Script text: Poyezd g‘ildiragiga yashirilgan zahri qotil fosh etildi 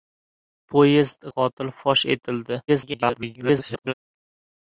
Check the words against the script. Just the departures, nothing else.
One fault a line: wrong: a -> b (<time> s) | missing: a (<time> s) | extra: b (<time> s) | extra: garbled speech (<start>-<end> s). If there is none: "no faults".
missing: g‘ildiragiga yashirilgan zahri (1.3 s)
extra: garbled speech (2.7-3.9 s)